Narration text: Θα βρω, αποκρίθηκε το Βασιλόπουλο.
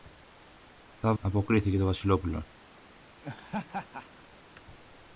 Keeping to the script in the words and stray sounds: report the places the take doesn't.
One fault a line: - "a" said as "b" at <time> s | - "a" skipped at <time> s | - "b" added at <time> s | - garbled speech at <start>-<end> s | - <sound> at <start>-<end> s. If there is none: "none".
- "βρω" skipped at 1.1 s
- laugh at 3.2-4.2 s